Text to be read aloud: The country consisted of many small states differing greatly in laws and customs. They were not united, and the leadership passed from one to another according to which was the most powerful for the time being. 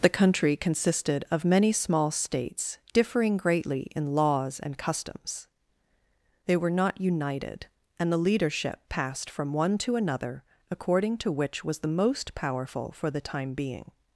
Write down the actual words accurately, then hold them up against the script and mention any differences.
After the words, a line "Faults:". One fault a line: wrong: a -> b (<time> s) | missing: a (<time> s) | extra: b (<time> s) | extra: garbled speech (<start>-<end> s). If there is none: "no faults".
The country consisted of many small states differing greatly in laws and customs. They were not united, and the leadership passed from one to another according to which was the most powerful for the time being.
Faults:
no faults